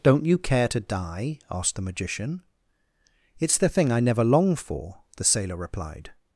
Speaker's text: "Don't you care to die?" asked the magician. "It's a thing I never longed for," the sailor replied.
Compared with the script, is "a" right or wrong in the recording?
wrong